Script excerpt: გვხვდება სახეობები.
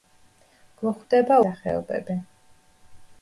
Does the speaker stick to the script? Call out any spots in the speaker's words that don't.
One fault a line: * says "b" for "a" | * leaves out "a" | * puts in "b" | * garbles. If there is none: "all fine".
all fine